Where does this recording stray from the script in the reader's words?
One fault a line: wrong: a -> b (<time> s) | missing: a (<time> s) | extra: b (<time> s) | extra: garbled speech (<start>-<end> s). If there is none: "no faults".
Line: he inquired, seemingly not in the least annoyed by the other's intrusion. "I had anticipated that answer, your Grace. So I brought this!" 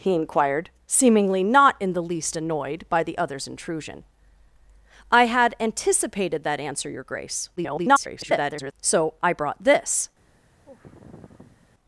extra: garbled speech (7.6-8.7 s)